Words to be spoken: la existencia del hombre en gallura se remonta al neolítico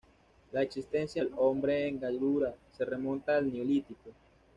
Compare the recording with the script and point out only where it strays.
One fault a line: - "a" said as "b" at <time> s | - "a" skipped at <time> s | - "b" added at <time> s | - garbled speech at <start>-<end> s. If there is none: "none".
none